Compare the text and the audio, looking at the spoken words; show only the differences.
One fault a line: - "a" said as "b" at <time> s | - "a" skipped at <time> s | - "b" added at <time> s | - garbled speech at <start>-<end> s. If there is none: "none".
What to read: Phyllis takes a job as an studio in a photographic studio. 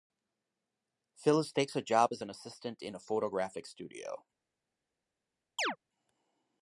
- "studio" said as "assistant" at 2.3 s